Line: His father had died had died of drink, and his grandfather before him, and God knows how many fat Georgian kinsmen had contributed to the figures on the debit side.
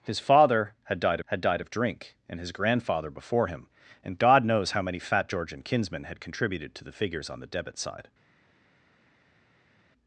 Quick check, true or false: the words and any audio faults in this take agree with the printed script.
true